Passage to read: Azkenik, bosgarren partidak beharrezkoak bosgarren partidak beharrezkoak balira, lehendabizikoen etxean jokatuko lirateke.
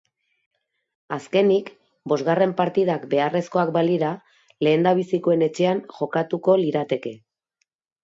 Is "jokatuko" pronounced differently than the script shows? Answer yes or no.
no